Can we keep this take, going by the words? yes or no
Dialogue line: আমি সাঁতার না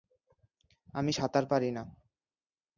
no